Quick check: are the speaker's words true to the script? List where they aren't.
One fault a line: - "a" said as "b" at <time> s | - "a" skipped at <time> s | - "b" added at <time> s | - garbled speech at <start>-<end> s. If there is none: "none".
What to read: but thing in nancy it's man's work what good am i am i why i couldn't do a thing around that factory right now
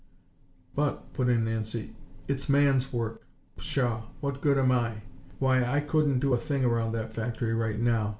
- "thing" said as "put" at 1.1 s
- "pshaw" added at 3.6 s
- "am i" skipped at 5.0 s